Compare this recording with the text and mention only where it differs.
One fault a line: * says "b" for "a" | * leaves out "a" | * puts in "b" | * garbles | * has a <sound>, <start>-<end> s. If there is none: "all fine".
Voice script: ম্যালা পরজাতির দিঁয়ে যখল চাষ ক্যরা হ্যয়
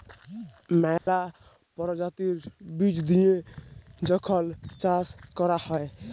* has a dropout, 1.0-1.1 s
* puts in "বীজ"